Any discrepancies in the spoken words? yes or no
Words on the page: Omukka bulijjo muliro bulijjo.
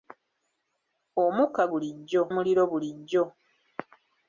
no